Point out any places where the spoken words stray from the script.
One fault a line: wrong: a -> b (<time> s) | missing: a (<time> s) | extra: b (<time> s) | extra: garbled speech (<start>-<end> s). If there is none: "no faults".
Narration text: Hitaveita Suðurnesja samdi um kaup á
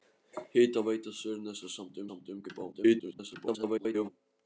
extra: samdi (2.1 s)
extra: garbled speech (2.7-4.1 s)